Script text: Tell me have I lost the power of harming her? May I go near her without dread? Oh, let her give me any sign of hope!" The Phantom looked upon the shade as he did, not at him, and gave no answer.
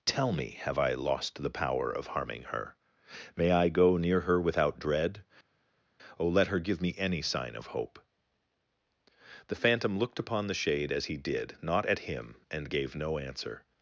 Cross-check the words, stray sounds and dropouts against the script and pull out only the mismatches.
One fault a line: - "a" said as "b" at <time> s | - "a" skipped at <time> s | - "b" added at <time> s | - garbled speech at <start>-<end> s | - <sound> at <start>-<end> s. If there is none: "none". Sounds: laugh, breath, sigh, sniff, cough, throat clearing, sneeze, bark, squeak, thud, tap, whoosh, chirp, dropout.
none